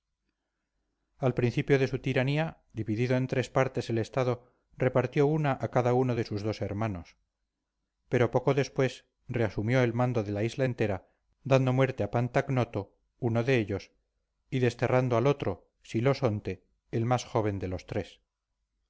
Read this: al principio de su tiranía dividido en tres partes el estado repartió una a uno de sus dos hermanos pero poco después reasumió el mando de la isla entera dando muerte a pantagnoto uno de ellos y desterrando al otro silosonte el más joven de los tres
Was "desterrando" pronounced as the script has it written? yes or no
yes